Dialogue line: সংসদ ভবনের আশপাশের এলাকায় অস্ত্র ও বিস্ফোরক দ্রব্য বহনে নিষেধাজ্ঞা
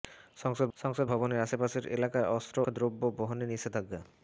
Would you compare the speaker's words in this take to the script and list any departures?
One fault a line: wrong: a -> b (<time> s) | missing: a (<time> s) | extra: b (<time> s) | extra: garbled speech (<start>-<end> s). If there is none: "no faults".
extra: সংসদ (0.7 s)
missing: ও বিস্ফোরক (2.6 s)